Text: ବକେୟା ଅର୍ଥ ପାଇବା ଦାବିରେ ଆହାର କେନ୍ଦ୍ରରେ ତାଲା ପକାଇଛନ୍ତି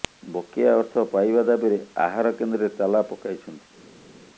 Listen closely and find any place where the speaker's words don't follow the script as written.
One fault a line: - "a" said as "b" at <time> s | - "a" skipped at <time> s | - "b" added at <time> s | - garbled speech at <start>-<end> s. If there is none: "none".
none